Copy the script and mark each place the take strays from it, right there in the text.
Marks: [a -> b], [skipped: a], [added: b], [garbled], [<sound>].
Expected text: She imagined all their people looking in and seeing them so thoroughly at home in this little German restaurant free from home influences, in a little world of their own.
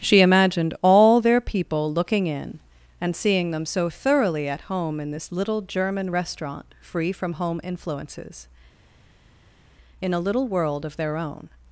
She imagined all their people looking in and seeing them so thoroughly at home in this little German restaurant free from home influences, in a little world of their own.